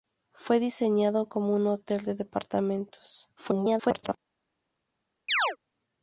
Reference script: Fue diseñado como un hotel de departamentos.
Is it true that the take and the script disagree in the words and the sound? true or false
true